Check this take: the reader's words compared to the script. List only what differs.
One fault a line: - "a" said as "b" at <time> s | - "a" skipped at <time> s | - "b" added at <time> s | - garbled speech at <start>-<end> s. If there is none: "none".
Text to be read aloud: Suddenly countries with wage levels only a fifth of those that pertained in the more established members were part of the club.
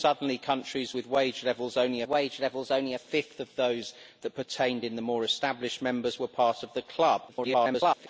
- "wage levels only" added at 2.1 s
- garbled speech at 7.3-8.1 s